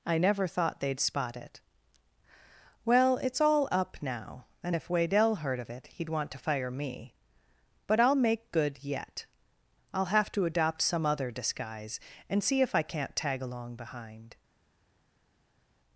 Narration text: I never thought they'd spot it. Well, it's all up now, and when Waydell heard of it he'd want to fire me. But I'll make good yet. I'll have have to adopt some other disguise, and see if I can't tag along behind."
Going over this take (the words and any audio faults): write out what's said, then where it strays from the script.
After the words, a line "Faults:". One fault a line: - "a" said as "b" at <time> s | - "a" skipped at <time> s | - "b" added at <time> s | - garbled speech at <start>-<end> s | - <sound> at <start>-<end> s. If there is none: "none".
I never thought they'd spot it. Well, it's all up now, and if Waydell heard of it he'd want to fire me. But I'll make good yet. I'll have to adopt some other disguise, and see if I can't tag along behind."
Faults:
- "when" said as "if" at 4.7 s
- "have" skipped at 10.3 s